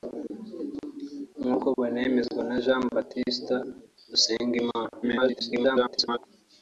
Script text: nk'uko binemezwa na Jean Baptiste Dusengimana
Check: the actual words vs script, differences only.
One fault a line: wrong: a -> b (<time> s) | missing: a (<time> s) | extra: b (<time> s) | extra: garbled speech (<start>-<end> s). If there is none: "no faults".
extra: garbled speech (5.0-6.2 s)